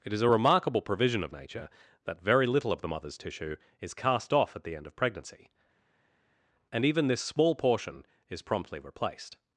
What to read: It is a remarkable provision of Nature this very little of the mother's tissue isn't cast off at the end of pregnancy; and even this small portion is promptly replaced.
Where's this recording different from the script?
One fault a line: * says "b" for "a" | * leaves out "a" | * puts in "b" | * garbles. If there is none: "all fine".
* says "that" for "this"
* says "is" for "isn't"